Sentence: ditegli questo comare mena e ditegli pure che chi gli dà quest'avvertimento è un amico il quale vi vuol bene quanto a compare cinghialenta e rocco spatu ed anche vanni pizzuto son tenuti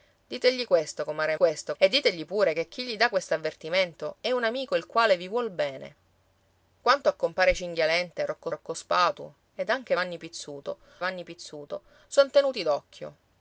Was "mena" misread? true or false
true